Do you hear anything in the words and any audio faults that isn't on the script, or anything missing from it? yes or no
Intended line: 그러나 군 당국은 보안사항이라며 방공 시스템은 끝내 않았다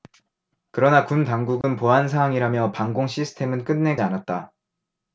yes